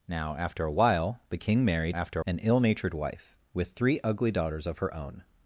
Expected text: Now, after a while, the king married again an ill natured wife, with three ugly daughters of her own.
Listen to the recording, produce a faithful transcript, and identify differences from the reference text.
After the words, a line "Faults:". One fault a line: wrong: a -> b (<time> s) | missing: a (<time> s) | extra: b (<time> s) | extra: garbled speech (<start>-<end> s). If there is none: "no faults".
Now, after a while, the king married after an ill natured wife, with three ugly daughters of her own.
Faults:
wrong: again -> after (1.9 s)